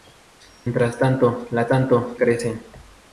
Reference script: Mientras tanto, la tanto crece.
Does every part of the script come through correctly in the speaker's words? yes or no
yes